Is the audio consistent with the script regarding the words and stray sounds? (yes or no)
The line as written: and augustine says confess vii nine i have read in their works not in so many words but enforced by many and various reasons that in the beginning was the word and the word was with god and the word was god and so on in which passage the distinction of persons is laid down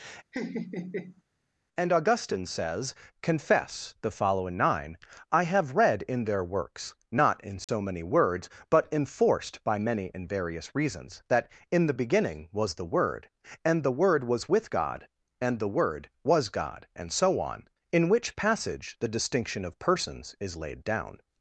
no